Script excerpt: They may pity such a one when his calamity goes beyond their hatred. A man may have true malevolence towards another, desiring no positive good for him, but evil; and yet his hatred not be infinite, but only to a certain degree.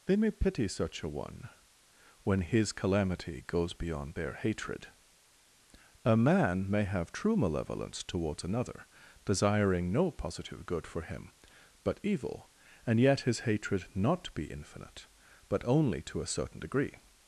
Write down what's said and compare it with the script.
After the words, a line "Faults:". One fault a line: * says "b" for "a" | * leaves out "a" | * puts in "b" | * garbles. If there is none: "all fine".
They may pity such a one when his calamity goes beyond their hatred. A man may have true malevolence towards another, desiring no positive good for him, but evil; and yet his hatred not be infinite, but only to a certain degree.
Faults:
all fine